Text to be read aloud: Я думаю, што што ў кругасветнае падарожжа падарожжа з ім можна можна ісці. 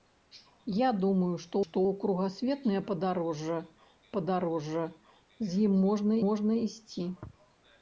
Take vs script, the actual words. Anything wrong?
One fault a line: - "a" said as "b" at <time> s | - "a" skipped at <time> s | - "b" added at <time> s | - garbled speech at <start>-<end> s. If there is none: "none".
none